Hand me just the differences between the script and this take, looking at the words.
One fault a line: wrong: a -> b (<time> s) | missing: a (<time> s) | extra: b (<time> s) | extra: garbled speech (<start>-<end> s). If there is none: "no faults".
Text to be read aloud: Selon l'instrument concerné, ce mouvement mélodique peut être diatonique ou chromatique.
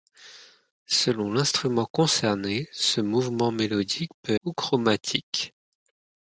missing: être diatonique (4.3 s)